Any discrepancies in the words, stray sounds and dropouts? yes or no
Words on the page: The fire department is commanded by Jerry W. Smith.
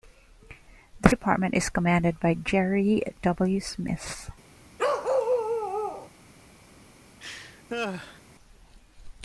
yes